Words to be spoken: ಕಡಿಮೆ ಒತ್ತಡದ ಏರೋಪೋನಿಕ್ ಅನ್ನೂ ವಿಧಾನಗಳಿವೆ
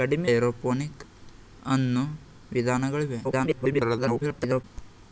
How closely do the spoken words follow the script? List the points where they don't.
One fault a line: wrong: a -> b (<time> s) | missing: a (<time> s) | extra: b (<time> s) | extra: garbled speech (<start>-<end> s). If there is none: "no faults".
missing: ಒತ್ತಡದ (0.3 s)
extra: garbled speech (3.2-4.6 s)